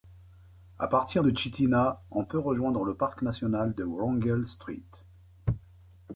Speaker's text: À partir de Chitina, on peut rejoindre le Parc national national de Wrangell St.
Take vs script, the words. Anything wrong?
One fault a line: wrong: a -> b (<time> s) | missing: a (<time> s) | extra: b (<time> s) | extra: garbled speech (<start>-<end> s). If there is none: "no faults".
missing: national (3.7 s)